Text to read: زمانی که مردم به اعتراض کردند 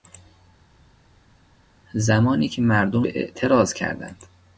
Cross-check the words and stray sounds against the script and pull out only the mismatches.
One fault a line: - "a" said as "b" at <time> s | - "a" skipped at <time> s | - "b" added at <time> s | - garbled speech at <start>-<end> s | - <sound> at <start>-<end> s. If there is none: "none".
none